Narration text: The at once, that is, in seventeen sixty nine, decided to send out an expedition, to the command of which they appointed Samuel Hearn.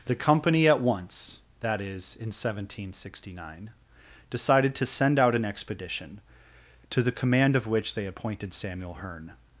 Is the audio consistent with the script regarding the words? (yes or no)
no